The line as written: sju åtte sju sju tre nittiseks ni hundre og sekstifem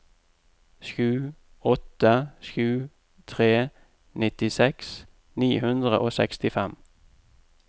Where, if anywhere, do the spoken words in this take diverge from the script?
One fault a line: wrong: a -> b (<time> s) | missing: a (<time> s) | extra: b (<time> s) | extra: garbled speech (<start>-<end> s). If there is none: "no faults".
missing: sju (2.9 s)